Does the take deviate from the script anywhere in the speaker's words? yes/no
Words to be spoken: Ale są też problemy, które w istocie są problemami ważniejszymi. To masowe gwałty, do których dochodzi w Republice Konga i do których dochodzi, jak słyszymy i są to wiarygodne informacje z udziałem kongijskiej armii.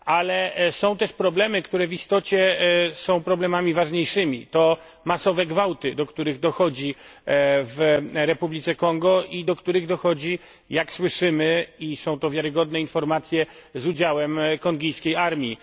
no